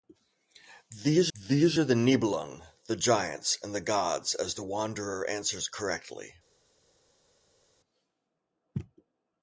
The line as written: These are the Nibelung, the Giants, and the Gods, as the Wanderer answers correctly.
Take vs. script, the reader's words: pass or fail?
fail